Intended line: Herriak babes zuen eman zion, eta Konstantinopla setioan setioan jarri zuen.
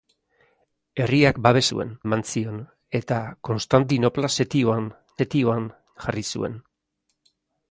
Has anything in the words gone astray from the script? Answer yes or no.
no